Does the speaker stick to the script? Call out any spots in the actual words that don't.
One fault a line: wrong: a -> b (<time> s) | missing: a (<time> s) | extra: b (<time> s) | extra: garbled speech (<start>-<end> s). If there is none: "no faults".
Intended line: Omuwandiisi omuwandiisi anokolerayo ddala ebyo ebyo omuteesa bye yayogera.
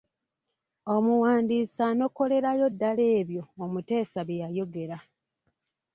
missing: omuwandiisi (1.8 s)
missing: ebyo (3.4 s)